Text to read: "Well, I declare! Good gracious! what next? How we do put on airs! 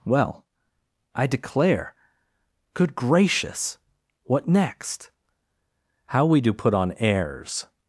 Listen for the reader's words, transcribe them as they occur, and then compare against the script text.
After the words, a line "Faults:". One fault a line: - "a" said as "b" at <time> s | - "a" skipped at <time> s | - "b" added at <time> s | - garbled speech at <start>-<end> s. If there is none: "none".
"Well, I declare! Good gracious! what next? How we do put on airs!
Faults:
none